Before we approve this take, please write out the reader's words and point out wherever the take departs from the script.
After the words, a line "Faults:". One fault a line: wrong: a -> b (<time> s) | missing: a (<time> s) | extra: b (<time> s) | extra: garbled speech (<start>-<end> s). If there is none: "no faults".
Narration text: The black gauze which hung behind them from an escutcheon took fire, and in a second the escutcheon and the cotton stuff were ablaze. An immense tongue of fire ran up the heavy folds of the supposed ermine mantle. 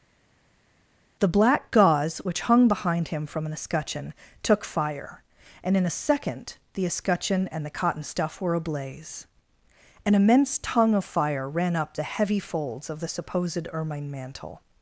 The black gauze which hung behind him from an escutcheon took fire, and in a second the escutcheon and the cotton stuff were ablaze. An immense tongue of fire ran up the heavy folds of the supposed ermine mantle.
Faults:
wrong: them -> him (3.1 s)